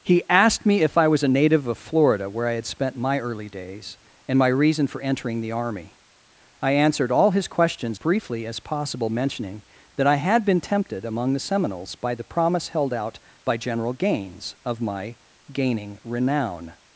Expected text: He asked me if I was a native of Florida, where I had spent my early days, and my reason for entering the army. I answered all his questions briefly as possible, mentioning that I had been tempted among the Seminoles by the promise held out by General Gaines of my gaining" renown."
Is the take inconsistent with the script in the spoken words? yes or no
no